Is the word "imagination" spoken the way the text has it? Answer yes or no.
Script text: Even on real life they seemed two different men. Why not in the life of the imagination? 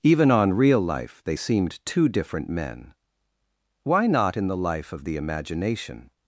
yes